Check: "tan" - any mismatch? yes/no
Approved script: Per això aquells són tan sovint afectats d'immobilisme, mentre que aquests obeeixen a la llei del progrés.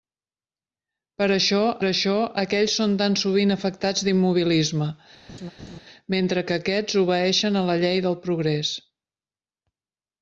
no